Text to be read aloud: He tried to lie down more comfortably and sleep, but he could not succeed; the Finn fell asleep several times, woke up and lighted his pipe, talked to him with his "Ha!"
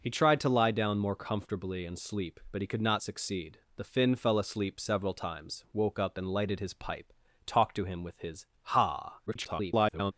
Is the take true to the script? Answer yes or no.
no